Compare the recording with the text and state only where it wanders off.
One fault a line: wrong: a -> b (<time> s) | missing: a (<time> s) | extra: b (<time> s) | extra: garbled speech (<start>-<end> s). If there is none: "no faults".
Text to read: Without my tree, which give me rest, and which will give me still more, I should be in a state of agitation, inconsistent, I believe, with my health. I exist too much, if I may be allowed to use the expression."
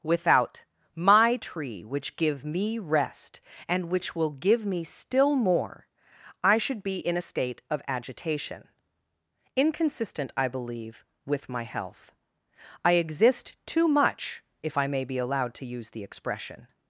no faults